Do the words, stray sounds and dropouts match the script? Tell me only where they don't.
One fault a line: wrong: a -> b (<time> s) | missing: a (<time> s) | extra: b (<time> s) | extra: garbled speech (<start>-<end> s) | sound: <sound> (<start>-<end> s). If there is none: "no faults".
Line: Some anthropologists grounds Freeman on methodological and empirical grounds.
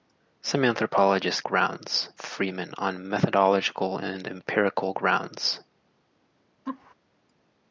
sound: laugh (6.7-6.9 s)